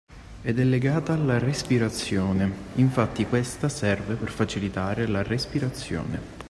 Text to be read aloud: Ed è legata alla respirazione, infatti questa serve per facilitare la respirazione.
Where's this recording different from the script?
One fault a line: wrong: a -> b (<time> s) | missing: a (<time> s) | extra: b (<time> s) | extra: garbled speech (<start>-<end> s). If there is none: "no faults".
no faults